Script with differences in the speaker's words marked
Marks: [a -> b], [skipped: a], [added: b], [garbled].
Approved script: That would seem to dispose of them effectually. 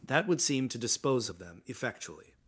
That would seem to dispose of them effectually.